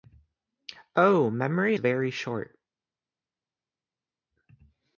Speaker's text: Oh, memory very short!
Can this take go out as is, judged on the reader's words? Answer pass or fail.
pass